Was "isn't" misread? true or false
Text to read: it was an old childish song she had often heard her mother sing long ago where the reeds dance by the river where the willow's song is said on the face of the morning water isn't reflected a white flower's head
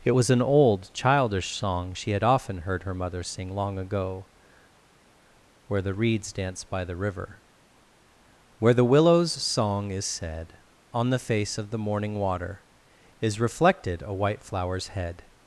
true